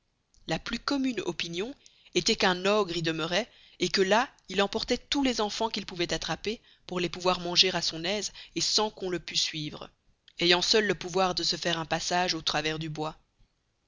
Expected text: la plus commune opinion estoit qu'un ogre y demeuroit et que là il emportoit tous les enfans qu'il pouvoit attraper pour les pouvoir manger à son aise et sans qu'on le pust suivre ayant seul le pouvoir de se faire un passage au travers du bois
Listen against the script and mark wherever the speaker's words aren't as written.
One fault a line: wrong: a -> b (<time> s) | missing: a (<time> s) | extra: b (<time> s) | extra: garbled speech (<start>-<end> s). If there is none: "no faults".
no faults